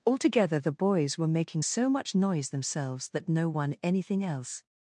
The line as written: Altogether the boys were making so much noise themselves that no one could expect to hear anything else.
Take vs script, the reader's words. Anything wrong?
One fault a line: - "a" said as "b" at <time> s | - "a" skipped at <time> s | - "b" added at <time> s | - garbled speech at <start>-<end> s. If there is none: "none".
- "could expect to hear" skipped at 3.7 s